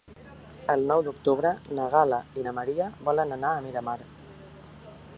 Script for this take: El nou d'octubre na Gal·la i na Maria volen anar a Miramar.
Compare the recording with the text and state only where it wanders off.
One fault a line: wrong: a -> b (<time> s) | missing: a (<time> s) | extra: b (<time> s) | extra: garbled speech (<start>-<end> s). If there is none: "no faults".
no faults